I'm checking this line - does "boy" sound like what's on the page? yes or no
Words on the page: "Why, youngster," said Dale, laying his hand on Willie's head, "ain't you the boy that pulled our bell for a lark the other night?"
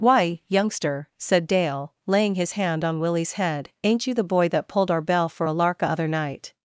yes